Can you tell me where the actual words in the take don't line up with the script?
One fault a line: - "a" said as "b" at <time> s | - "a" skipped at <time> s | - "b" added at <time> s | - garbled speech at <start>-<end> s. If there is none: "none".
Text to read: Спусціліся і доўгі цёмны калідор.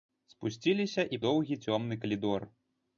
none